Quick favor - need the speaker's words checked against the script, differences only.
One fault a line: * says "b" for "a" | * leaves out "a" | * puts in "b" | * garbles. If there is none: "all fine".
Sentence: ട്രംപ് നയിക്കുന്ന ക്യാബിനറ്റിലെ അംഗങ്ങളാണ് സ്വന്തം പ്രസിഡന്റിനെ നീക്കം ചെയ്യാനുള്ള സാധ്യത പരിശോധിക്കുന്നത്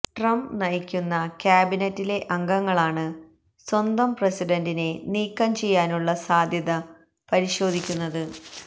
all fine